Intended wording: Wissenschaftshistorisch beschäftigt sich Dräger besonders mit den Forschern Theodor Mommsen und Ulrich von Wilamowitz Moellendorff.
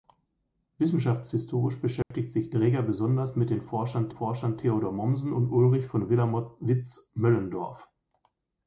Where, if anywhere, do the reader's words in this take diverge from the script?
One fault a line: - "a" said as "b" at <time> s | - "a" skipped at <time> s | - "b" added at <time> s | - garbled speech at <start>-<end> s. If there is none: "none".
- "Forschern" added at 4.1 s